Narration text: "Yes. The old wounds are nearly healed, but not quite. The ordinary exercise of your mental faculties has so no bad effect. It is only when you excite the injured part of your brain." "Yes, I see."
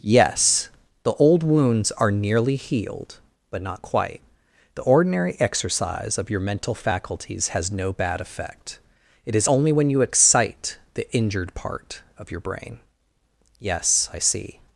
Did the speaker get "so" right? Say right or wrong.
wrong